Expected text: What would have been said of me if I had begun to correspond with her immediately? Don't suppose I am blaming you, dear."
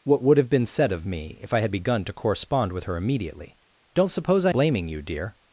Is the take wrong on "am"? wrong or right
wrong